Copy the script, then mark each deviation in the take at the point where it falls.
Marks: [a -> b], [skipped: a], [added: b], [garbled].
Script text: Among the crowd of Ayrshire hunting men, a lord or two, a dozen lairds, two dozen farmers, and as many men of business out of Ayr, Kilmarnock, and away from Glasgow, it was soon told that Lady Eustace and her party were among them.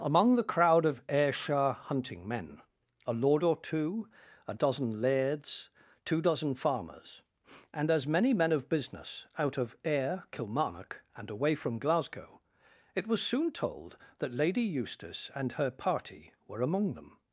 Among the crowd of Ayrshire hunting men, a lord or two, a dozen lairds, two dozen farmers, and as many men of business out of Ayr, Kilmarnock, and away from Glasgow, it was soon told that Lady Eustace and her party were among them.